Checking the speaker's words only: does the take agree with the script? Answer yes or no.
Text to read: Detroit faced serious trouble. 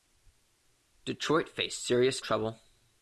yes